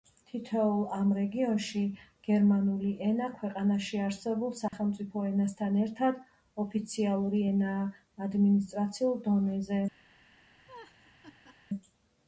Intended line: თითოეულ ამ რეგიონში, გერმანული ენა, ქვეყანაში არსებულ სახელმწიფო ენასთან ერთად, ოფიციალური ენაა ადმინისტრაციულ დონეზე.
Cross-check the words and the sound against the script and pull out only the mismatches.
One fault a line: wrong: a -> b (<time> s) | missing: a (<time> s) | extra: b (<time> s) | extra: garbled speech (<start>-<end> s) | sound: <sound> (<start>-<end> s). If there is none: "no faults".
sound: dropout (4.7-4.7 s)
sound: laugh (10.7-11.6 s)